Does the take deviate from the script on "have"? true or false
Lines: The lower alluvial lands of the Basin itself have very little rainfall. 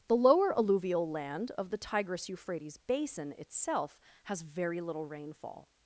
true